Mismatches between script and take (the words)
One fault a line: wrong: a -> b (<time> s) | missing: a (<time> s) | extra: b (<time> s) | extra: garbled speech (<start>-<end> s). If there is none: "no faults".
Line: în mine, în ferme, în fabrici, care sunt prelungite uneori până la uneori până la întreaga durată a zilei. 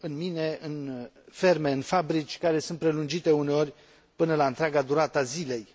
missing: uneori până la (4.5 s)